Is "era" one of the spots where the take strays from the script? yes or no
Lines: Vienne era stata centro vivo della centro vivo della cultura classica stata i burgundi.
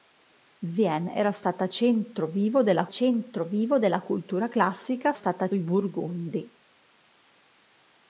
no